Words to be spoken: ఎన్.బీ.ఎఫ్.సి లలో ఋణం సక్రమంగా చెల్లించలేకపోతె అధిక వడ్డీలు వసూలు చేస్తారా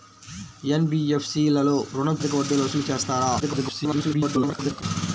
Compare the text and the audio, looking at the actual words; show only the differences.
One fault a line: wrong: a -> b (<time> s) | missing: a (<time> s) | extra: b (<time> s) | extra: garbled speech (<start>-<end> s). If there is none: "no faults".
missing: సక్రమంగా చెల్లించలేకపోతె (2.2 s)
extra: garbled speech (3.4-4.8 s)